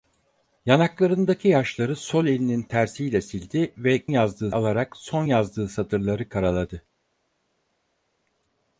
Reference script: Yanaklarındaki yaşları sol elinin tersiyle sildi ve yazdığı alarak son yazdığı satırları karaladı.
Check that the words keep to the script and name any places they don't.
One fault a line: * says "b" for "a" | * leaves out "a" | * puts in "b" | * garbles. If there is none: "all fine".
all fine